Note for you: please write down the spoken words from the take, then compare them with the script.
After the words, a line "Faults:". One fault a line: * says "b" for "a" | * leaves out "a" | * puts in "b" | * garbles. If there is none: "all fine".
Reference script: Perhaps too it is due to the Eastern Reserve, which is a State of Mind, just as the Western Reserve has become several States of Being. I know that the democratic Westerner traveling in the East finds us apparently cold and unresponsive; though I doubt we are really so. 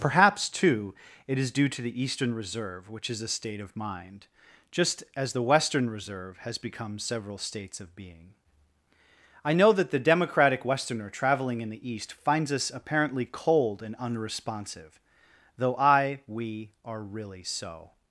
Perhaps too it is due to the Eastern Reserve, which is a State of Mind, just as the Western Reserve has become several States of Being. I know that the democratic Westerner traveling in the East finds us apparently cold and unresponsive; though I we are really so.
Faults:
* leaves out "doubt"